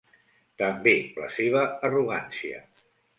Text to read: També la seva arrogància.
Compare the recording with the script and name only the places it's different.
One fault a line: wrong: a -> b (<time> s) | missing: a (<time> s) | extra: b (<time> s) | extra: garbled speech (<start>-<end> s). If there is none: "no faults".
no faults